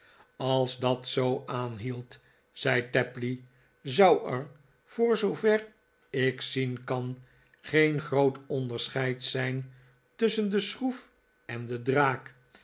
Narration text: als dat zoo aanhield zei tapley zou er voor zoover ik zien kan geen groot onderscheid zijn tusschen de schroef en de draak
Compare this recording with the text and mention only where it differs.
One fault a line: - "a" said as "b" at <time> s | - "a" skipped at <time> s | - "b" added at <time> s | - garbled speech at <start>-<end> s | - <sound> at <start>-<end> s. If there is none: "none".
none